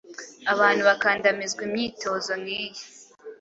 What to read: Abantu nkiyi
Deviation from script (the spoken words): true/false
true